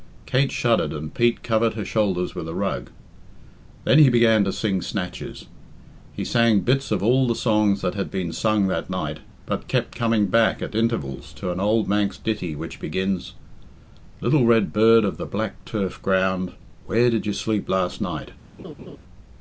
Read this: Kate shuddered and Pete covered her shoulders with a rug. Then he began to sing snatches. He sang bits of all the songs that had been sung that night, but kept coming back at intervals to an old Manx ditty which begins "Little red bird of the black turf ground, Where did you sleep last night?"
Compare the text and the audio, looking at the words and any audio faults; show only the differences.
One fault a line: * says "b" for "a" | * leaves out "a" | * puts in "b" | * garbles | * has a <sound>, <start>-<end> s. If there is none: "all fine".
* has a laugh, 18.6-19.0 s